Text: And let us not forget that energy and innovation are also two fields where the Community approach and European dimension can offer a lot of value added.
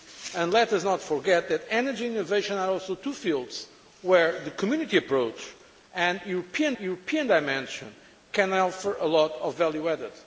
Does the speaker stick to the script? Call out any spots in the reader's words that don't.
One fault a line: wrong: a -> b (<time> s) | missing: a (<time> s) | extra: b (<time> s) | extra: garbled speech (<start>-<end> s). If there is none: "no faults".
extra: European (6.8 s)